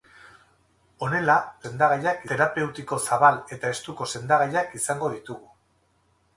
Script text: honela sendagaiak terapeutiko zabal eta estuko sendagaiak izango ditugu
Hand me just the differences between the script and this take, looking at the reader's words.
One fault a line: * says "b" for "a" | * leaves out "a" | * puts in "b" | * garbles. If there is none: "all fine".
all fine